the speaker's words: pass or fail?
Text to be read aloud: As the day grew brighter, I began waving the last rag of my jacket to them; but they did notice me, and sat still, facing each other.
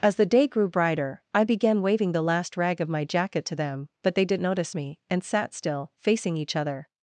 pass